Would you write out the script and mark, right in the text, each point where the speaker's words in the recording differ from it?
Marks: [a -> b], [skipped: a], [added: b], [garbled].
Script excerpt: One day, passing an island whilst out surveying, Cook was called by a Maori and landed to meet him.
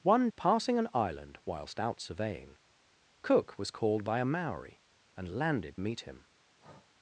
One [skipped: day,] passing an island whilst out surveying, Cook was called by a Maori and landed [skipped: to] meet him.